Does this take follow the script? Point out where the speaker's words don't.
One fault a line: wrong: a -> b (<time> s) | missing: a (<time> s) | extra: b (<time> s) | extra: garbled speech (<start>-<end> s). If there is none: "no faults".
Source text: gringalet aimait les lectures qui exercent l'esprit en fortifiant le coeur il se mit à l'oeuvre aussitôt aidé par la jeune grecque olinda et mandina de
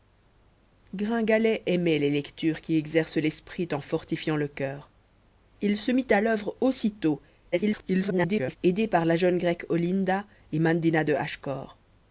extra: garbled speech (7.5-8.6 s)